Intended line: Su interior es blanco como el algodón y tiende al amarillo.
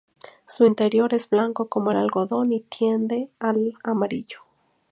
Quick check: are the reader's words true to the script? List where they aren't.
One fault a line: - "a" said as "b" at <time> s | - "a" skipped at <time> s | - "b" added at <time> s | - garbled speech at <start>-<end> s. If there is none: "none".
none